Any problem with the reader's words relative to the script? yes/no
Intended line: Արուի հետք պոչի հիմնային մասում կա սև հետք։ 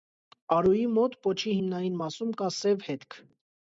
yes